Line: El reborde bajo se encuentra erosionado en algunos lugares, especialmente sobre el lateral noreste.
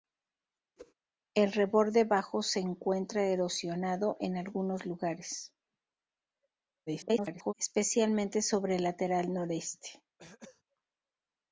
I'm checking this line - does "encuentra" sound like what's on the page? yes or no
yes